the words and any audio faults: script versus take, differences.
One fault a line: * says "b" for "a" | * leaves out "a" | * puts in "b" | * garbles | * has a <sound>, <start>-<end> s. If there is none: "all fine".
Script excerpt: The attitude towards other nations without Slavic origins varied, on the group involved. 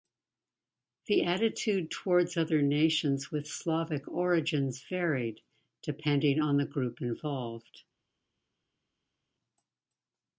* says "with" for "without"
* puts in "depending"